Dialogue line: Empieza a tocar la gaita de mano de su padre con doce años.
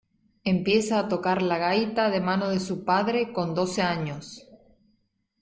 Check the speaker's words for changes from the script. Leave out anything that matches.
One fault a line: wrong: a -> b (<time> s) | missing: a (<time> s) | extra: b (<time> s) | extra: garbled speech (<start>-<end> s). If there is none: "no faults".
no faults